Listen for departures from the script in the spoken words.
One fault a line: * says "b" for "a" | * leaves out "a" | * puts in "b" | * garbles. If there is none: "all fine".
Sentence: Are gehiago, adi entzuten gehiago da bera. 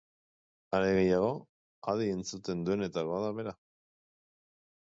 * says "duenetakoa" for "gehiago"